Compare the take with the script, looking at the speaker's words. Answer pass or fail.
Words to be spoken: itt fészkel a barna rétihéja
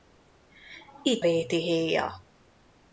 fail